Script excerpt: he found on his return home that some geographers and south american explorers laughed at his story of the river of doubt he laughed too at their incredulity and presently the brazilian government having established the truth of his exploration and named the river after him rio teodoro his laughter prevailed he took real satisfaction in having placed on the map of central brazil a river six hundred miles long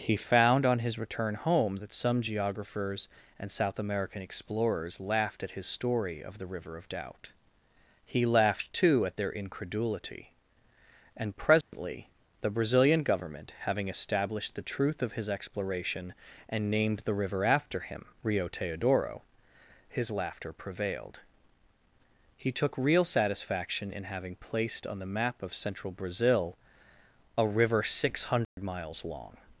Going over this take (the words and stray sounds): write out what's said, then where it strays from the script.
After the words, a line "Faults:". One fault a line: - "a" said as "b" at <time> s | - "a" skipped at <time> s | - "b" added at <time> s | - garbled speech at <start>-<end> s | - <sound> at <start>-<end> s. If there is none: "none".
he found on his return home that some geographers and south american explorers laughed at his story of the river of doubt he laughed too at their incredulity and presently the brazilian government having established the truth of his exploration and named the river after him rio teodoro his laughter prevailed he took real satisfaction in having placed on the map of central brazil a river six hundred miles long
Faults:
- dropout at 11.6-11.7 s
- dropout at 28.4-28.6 s